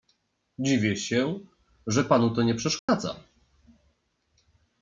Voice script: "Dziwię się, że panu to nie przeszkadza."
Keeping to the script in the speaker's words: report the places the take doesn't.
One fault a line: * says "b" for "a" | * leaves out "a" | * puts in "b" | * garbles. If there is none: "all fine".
all fine